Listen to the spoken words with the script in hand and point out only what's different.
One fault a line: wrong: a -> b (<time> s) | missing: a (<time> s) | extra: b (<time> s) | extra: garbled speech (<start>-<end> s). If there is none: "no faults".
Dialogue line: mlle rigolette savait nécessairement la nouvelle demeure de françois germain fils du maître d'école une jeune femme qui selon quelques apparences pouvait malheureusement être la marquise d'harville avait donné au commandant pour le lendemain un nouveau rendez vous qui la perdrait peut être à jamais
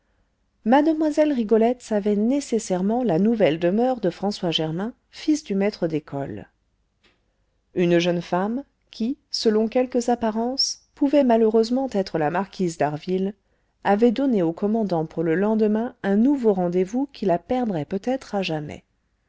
no faults